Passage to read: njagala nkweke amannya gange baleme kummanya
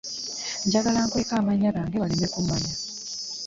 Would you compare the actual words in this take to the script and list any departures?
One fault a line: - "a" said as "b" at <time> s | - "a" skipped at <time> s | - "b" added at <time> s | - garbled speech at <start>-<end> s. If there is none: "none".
none